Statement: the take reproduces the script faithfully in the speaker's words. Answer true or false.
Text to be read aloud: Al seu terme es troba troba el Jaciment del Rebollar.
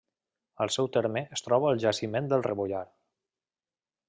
false